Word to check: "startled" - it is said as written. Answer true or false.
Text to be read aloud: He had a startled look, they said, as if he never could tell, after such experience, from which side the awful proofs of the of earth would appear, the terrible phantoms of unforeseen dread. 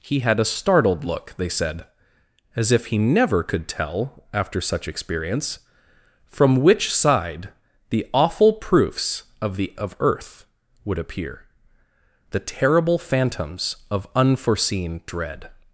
true